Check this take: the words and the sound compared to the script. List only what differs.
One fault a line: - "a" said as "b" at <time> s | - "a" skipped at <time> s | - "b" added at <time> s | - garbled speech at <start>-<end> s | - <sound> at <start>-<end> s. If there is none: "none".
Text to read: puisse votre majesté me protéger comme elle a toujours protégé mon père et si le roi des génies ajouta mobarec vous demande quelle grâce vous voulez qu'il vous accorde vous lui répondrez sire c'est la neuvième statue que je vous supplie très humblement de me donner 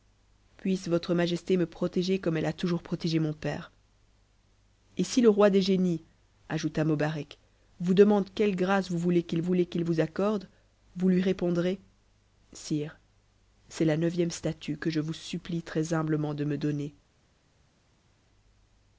- "voulez qu'il" added at 9.4 s